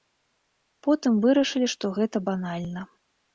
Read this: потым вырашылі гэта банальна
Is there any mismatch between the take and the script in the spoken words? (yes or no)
yes